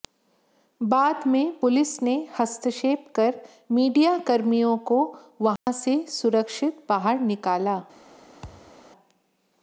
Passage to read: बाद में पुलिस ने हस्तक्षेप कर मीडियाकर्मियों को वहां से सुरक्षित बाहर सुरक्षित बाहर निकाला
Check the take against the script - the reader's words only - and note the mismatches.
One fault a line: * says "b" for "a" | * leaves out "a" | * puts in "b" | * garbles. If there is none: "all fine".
* leaves out "सुरक्षित बाहर"